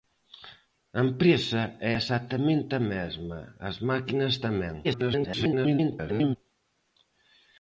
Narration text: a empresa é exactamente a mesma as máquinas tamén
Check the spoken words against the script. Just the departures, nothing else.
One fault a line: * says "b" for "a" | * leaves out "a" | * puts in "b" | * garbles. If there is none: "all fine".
* garbles